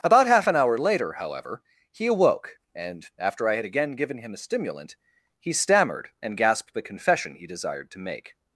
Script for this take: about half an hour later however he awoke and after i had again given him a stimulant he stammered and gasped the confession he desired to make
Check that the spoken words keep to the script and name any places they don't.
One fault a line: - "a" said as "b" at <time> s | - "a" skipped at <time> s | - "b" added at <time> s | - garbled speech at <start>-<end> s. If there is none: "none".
none